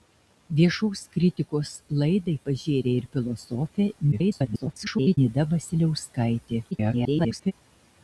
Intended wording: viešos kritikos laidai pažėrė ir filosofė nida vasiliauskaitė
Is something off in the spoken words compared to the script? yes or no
yes